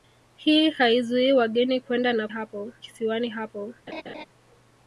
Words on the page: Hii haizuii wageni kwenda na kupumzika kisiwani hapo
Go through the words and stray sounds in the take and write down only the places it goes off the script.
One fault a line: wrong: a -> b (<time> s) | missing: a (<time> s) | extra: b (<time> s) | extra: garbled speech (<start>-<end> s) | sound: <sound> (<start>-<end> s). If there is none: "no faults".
wrong: kupumzika -> hapo (2.3 s)
sound: laugh (3.9-4.3 s)